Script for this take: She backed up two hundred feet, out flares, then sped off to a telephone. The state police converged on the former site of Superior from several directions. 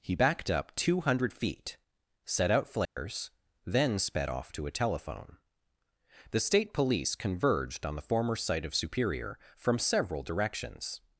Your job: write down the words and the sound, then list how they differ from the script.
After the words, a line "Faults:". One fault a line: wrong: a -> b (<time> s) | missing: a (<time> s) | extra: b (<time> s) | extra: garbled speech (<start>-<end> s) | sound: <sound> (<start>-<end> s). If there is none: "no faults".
He backed up two hundred feet, set out flares, then sped off to a telephone. The state police converged on the former site of Superior from several directions.
Faults:
wrong: She -> He (0.0 s)
extra: set (2.2 s)
sound: dropout (2.9-3.0 s)